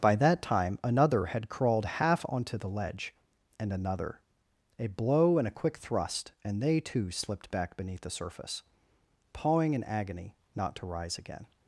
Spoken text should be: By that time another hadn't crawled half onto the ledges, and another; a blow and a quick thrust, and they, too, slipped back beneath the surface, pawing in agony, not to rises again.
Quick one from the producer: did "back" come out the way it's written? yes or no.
yes